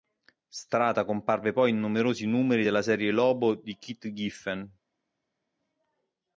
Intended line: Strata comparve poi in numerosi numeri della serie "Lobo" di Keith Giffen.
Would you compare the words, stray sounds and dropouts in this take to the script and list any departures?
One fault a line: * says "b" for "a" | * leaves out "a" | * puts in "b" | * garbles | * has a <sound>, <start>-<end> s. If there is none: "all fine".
all fine